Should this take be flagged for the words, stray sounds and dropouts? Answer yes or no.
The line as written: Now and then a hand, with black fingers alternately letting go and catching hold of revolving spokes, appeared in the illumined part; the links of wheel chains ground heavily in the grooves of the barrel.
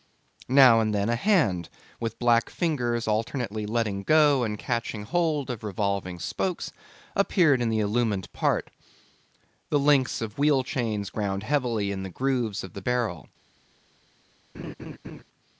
yes